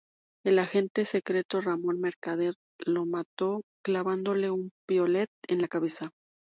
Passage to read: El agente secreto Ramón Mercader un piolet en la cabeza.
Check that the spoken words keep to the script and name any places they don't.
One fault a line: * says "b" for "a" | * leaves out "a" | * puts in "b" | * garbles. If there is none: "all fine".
* puts in "lo mató clavándole"